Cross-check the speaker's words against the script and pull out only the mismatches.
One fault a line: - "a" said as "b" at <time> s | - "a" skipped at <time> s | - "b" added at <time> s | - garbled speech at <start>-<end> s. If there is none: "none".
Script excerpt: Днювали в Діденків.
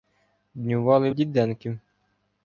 none